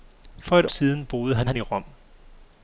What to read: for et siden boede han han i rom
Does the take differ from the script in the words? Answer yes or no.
no